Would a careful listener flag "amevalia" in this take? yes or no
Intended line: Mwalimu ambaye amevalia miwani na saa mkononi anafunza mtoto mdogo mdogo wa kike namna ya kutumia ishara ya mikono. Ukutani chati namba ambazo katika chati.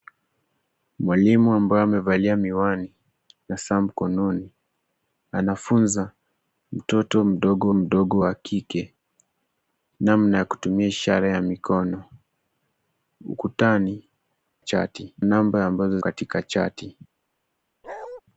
no